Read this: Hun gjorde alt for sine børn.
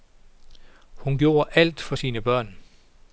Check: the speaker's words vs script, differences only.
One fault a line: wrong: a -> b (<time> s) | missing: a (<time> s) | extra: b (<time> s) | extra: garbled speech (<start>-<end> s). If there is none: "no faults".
no faults